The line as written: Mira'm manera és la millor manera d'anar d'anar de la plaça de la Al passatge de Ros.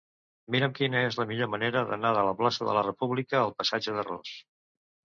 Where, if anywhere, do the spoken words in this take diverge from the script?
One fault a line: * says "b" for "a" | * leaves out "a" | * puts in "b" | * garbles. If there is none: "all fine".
* says "quina" for "manera"
* leaves out "d'anar"
* puts in "República"